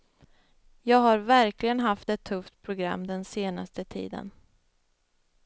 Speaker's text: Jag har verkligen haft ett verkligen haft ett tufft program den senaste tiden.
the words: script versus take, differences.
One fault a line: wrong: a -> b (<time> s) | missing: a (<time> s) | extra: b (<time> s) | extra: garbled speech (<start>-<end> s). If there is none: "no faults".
missing: verkligen haft ett (2.2 s)